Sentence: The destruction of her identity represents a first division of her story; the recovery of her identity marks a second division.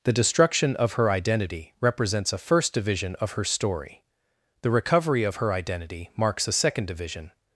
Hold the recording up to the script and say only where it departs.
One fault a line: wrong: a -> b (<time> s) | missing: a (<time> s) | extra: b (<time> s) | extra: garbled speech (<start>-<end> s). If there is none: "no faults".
no faults